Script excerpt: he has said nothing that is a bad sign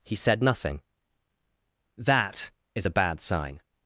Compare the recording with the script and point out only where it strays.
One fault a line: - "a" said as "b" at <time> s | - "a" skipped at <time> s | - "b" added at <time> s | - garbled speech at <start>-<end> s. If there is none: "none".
- "has" skipped at 0.1 s